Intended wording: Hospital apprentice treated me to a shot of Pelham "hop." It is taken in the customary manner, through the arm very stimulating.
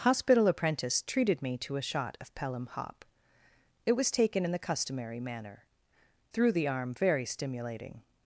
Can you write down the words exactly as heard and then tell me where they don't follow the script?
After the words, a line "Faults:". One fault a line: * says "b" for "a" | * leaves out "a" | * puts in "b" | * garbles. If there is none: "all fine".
Hospital apprentice treated me to a shot of Pelham "hop." It was taken in the customary manner, through the arm very stimulating.
Faults:
* says "was" for "is"